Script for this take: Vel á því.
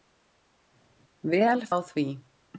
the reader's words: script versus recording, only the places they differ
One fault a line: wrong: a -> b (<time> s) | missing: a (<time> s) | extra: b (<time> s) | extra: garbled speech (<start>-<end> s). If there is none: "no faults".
no faults